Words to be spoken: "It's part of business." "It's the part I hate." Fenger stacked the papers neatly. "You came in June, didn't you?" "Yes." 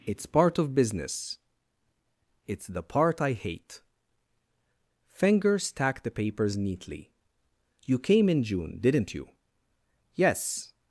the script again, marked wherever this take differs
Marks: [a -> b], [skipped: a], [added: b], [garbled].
"It's part of business." "It's the part I hate." Fenger stacked the papers neatly. "You came in June, didn't you?" "Yes."